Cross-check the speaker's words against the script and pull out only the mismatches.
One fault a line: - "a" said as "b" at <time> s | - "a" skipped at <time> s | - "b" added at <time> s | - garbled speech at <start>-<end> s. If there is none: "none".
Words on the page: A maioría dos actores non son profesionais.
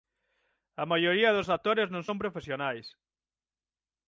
none